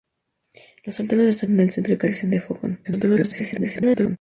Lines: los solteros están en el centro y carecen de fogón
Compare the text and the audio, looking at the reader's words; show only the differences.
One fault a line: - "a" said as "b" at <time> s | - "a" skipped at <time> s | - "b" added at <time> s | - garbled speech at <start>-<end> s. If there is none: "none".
- garbled speech at 2.8-4.2 s